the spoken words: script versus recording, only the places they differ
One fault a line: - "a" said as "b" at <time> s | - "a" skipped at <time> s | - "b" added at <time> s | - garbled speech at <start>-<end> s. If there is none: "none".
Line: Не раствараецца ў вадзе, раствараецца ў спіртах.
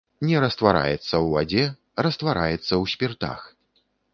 none